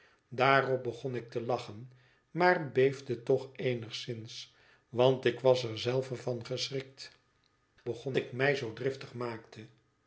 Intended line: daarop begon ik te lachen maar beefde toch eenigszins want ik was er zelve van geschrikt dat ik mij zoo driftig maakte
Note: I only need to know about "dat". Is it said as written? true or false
false